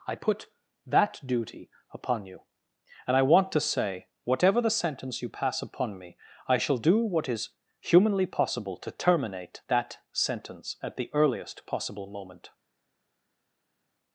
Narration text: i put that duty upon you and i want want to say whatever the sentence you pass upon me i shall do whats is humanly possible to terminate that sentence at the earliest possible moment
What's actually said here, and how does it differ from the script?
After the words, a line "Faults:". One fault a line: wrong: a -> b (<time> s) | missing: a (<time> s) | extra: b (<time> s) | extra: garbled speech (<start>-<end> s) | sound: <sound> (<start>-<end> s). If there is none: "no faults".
i put that duty upon you and i want to say whatever the sentence you pass upon me i shall do what is humanly possible to terminate that sentence at the earliest possible moment
Faults:
missing: want (3.5 s)
wrong: whats -> what (7.0 s)